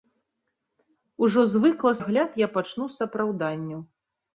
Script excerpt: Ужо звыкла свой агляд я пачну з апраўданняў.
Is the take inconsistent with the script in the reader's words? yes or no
yes